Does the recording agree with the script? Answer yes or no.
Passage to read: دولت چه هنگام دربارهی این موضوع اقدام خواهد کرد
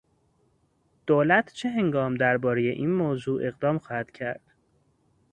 yes